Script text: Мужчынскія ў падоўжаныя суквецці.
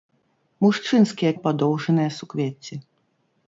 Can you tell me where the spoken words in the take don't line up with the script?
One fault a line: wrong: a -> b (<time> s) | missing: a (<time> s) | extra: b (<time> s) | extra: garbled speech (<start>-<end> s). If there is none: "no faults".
no faults